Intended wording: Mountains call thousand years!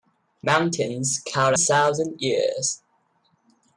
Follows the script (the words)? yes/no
yes